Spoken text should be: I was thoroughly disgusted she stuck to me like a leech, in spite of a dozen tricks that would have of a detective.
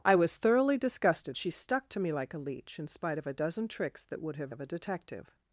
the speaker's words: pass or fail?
pass